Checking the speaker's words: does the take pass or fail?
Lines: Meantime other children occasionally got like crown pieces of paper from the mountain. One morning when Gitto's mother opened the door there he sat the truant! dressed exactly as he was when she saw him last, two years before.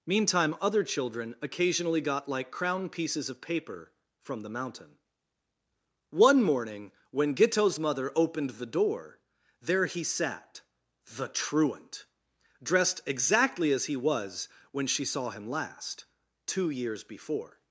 pass